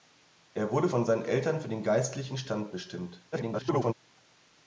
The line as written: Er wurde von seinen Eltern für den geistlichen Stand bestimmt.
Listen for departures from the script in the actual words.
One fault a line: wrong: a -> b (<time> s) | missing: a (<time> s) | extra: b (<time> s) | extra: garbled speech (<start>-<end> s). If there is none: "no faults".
extra: garbled speech (3.3-3.9 s)